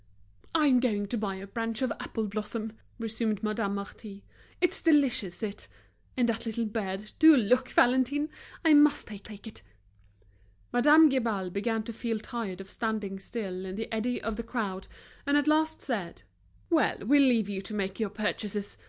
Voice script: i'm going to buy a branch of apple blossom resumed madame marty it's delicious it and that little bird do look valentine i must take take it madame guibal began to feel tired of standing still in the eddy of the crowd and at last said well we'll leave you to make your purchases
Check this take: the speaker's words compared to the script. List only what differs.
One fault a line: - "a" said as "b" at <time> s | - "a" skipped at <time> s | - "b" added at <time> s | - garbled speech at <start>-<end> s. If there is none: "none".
none